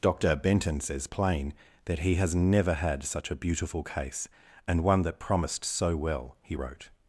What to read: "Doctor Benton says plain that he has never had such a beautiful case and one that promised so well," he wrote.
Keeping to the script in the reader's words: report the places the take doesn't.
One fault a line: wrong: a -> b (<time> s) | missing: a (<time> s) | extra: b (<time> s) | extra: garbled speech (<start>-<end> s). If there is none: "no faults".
no faults